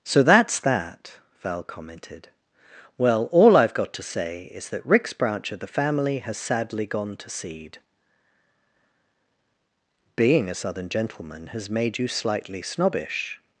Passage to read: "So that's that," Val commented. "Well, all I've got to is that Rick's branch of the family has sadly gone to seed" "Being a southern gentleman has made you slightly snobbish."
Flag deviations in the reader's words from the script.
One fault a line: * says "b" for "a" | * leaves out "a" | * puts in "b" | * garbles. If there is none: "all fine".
* puts in "say"